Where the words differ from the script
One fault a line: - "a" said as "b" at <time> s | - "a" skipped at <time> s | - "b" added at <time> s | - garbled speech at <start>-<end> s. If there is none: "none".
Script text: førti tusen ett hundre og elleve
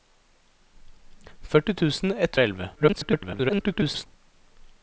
- "hundre" skipped at 2.4 s
- garbled speech at 2.8-4.1 s